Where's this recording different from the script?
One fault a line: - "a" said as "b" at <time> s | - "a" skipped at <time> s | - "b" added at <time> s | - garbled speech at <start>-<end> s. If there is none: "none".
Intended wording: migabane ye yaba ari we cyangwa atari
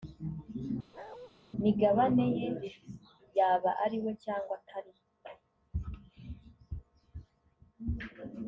none